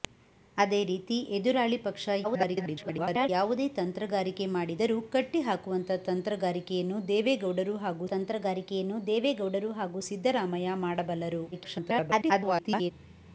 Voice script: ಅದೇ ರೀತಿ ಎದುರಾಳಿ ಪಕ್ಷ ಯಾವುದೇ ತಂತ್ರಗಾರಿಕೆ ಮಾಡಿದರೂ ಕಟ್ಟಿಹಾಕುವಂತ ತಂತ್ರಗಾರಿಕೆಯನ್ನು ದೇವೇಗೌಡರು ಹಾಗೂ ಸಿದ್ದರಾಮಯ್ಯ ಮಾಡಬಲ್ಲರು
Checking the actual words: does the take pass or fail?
fail